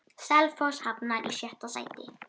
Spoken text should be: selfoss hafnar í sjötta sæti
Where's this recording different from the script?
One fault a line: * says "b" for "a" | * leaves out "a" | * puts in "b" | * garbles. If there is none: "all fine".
all fine